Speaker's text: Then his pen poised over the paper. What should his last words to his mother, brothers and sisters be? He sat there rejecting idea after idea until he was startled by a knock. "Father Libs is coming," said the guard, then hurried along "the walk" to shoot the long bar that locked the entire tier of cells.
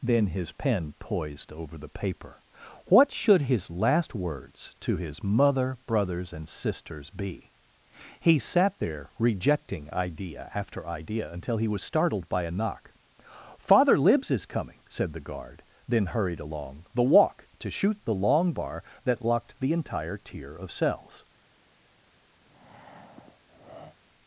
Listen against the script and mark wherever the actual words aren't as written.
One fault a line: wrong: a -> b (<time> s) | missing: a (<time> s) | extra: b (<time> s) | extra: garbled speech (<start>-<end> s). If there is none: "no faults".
no faults